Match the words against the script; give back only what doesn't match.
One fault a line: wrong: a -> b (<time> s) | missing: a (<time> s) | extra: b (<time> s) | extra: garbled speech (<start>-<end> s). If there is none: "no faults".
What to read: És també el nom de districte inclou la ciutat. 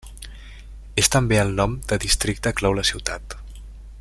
no faults